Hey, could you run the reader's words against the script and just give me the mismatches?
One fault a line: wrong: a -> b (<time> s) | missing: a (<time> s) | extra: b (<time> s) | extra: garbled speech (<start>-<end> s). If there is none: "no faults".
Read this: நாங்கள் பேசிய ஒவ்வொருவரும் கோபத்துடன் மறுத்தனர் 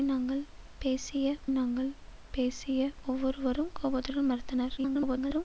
extra: நாங்கள் பேசிய (1.5 s)
extra: garbled speech (4.8-5.4 s)